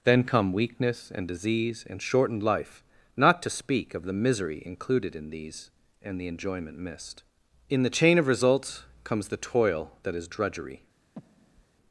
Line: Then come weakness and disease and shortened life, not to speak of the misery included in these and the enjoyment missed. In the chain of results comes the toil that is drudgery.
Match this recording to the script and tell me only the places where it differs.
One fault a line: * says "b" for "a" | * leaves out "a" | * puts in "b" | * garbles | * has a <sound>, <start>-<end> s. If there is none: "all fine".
* has a breath, 11.2-11.7 s